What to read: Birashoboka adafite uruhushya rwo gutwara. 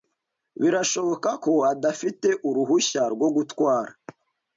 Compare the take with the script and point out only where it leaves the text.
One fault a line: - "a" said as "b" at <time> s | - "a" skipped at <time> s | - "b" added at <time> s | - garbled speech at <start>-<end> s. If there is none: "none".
- "ko" added at 1.4 s